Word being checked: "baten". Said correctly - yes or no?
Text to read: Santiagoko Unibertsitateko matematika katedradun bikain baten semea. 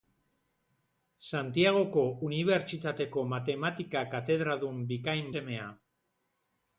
no